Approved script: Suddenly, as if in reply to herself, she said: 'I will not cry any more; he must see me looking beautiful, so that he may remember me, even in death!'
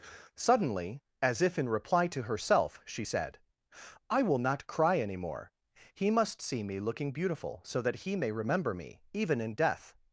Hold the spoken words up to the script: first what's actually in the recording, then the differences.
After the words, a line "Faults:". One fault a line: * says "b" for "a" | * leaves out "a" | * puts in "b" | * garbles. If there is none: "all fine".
Suddenly, as if in reply to herself, she said: 'I will not cry any more; he must see me looking beautiful, so that he may remember me, even in death!'
Faults:
all fine